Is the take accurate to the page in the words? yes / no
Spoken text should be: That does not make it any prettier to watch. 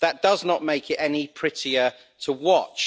yes